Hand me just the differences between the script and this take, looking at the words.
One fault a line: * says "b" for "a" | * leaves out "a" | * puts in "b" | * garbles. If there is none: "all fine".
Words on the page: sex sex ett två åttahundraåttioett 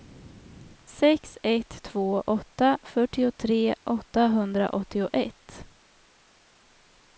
* leaves out "sex"
* puts in "åtta fyrtiotre"